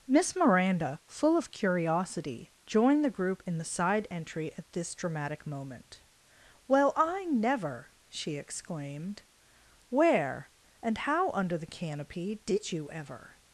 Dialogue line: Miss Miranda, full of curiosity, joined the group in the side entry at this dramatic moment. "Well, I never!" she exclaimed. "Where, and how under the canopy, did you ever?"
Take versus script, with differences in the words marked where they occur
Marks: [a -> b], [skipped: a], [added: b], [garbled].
Miss Miranda, full of curiosity, joined the group in the side entry at this dramatic moment. "Well, I never!" she exclaimed. "Where, and how under the canopy, did you ever?"